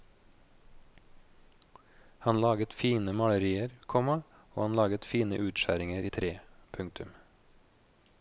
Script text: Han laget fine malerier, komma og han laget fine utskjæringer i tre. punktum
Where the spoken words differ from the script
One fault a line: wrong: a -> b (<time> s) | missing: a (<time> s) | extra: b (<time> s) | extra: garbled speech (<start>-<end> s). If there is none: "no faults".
no faults